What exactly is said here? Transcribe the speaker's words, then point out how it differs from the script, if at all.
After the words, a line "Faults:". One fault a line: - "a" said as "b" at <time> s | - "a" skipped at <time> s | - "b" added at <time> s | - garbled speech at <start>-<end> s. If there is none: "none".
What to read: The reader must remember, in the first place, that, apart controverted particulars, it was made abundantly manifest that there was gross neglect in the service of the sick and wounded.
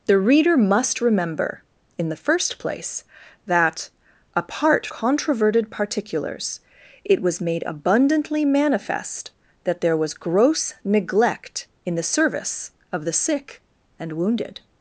The reader must remember, in the first place, that, apart controverted particulars, it was made abundantly manifest that there was gross neglect in the service of the sick and wounded.
Faults:
none